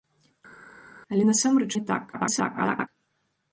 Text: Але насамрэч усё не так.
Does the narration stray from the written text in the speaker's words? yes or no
yes